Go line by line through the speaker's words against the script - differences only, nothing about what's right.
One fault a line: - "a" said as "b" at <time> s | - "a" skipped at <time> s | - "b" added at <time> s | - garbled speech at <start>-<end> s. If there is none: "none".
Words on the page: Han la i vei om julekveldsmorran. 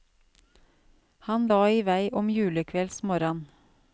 none